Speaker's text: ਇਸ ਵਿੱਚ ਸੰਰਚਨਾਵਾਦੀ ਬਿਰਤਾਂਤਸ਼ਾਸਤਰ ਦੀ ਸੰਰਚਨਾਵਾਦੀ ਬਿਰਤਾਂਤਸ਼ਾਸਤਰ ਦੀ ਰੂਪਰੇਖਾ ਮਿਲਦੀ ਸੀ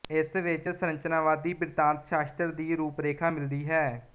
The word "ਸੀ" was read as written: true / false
false